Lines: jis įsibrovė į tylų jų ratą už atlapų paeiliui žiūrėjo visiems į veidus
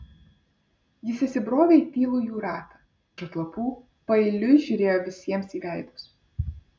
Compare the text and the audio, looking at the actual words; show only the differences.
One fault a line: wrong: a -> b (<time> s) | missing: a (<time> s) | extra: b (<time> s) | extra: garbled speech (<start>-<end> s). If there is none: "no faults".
no faults